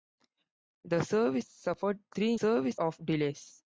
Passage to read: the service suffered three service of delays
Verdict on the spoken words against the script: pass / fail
pass